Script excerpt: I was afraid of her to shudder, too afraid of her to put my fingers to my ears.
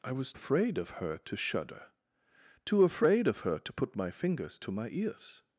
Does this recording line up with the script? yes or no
yes